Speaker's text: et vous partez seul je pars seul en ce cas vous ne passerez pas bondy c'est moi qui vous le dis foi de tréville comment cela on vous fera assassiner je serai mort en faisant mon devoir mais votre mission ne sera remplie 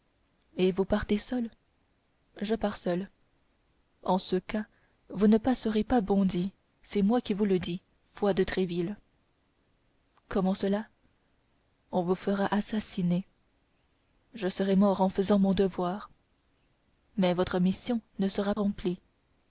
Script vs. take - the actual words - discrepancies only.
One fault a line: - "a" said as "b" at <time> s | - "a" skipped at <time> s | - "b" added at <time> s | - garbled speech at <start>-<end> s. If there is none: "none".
none